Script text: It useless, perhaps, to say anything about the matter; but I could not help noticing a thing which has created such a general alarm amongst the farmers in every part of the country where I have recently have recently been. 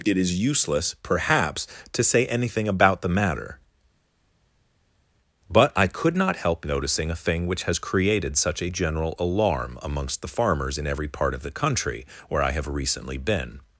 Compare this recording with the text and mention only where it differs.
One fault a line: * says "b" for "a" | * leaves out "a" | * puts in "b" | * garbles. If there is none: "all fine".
* puts in "is"
* leaves out "have recently"